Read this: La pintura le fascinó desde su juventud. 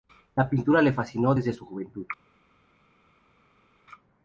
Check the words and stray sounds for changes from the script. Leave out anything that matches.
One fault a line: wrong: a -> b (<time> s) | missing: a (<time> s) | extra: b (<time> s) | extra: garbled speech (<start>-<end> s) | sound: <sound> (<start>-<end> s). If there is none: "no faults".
no faults